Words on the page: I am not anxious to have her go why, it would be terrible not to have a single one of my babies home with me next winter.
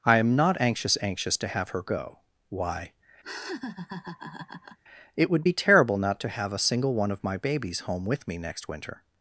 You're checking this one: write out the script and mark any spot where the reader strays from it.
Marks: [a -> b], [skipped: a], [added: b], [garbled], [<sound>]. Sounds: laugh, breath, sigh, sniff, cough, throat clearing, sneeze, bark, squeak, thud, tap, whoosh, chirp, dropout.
I am not anxious [added: anxious] to have her go why, [laugh] it would be terrible not to have a single one of my babies home with me next winter.